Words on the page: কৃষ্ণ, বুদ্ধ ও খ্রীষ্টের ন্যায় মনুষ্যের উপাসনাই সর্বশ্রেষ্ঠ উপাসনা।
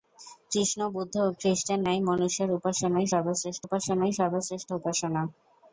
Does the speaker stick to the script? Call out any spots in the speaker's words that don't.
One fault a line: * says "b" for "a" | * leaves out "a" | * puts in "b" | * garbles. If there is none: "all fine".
* puts in "উপাসনাই সর্বশ্রেষ্ঠ"